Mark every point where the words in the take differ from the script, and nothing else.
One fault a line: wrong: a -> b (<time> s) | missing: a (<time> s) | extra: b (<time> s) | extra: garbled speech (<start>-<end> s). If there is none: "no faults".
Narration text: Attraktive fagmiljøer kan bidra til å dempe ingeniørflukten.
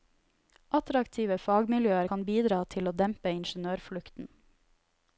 no faults